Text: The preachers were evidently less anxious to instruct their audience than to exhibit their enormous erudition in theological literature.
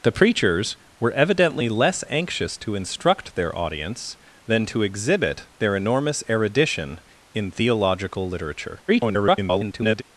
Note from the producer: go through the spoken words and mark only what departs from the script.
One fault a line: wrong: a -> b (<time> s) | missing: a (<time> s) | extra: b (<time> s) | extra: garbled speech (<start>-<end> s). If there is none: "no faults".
extra: garbled speech (8.9-10.0 s)